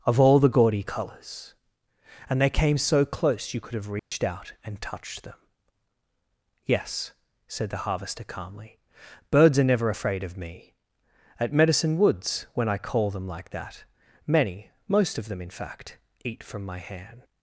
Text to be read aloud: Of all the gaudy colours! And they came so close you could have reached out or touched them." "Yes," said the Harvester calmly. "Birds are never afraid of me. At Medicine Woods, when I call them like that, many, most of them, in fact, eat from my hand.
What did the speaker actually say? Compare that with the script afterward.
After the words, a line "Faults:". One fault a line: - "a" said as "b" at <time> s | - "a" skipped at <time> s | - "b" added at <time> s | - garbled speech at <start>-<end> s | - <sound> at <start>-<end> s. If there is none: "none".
Of all the gaudy colours! And they came so close you could have reached out and touched them." "Yes," said the Harvester calmly. "Birds are never afraid of me. At Medicine Woods, when I call them like that, many, most of them, in fact, eat from my hand.
Faults:
- dropout at 4.0-4.1 s
- "or" said as "and" at 4.6 s